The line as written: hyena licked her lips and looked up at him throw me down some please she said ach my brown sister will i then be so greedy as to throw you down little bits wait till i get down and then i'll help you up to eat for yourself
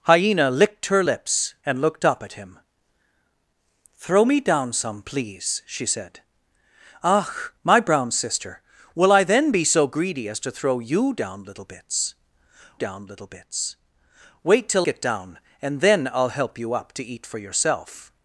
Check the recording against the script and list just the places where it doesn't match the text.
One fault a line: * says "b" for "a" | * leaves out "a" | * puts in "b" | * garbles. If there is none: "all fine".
* puts in "down little bits"
* leaves out "i"